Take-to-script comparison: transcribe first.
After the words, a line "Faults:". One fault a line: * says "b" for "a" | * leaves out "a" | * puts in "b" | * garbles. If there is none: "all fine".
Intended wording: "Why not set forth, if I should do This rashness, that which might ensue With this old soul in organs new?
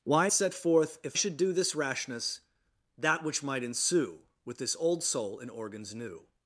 "Why set forth, if should do This rashness, that which might ensue With this old soul in organs new?
Faults:
* leaves out "not"
* leaves out "I"